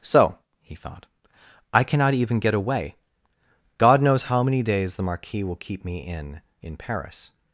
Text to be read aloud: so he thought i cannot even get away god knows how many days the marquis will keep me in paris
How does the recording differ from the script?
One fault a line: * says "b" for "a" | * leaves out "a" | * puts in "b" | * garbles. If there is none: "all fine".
* puts in "in"